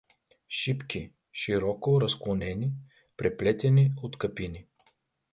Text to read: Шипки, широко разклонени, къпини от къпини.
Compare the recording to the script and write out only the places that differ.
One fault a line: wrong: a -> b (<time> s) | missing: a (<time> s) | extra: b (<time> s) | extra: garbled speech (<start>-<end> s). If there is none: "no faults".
wrong: къпини -> преплетени (3.2 s)